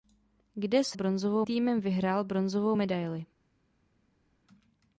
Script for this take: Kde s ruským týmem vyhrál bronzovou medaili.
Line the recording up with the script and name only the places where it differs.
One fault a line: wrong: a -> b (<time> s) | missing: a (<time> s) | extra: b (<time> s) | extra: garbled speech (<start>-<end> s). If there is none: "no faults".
wrong: ruským -> bronzovou (0.9 s)